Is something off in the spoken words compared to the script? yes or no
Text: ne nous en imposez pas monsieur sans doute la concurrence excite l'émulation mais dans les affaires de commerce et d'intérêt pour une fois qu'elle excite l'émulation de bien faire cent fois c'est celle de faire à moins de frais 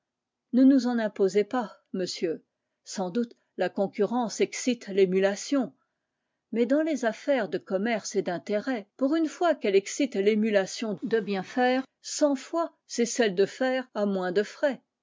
no